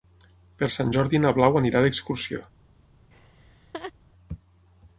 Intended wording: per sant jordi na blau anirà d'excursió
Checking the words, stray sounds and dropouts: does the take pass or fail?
fail